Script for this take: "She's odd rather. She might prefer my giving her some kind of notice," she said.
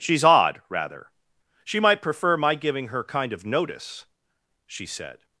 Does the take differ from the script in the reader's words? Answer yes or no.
yes